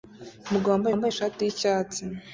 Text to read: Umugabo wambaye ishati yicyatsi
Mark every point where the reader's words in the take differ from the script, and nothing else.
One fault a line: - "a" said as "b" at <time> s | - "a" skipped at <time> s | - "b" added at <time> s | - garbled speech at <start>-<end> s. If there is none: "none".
- "wambaye" added at 0.9 s